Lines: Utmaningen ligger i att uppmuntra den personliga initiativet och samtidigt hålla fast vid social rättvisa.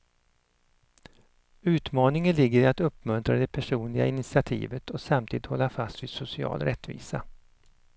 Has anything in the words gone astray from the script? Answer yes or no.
yes